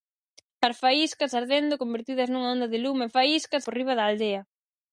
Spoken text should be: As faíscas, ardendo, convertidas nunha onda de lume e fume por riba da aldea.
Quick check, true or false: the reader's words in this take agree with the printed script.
false